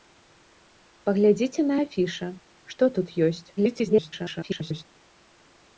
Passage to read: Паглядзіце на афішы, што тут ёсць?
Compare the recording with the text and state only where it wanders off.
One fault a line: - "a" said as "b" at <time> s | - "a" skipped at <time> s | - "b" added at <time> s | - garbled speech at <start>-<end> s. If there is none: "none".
- garbled speech at 3.6-4.8 s